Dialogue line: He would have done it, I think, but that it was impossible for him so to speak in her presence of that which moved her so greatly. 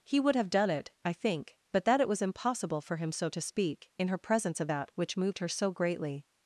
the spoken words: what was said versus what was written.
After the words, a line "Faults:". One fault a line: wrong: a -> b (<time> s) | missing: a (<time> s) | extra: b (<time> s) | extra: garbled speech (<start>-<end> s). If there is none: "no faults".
He would have done it, I think, but that it was impossible for him so to speak in her presence of that which moved her so greatly.
Faults:
no faults